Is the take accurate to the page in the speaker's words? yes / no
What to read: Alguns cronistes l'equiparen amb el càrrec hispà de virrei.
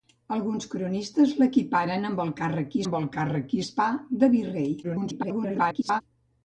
no